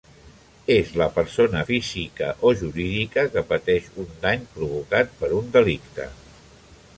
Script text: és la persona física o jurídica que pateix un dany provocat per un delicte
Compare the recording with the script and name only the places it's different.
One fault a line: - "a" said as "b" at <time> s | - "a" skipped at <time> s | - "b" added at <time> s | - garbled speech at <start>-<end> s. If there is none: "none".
none